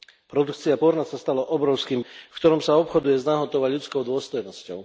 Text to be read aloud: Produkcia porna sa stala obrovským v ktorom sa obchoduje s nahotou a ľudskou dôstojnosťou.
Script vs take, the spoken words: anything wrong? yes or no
no